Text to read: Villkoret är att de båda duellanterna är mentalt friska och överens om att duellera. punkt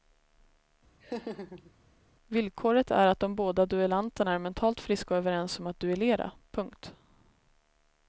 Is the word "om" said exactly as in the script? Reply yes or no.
yes